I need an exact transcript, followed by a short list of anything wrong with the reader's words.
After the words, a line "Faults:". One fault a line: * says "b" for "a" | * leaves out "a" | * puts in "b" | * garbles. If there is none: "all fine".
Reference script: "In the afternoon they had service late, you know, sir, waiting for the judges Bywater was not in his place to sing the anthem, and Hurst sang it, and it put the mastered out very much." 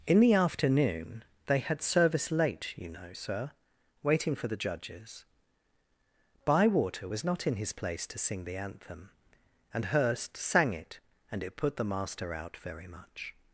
"In the afternoon they had service late, you know, sir, waiting for the judges Bywater was not in his place to sing the anthem, and Hurst sang it, and it put the master out very much."
Faults:
* says "master" for "mastered"